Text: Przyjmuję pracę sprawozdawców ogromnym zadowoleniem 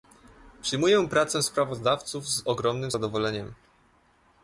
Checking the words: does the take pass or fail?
fail